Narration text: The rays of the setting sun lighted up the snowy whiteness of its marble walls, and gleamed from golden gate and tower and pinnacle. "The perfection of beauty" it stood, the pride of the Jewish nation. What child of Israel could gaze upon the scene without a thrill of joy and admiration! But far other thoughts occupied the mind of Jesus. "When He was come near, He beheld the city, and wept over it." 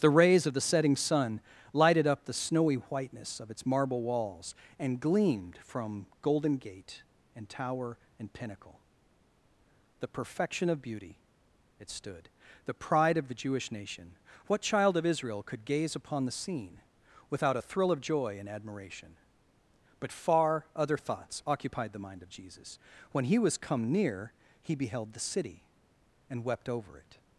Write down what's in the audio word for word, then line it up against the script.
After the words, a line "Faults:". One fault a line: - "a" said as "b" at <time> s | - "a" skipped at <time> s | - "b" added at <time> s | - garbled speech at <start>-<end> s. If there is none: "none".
The rays of the setting sun lighted up the snowy whiteness of its marble walls, and gleamed from golden gate and tower and pinnacle. "The perfection of beauty" it stood, the pride of the Jewish nation. What child of Israel could gaze upon the scene without a thrill of joy and admiration! But far other thoughts occupied the mind of Jesus. "When He was come near, He beheld the city, and wept over it."
Faults:
none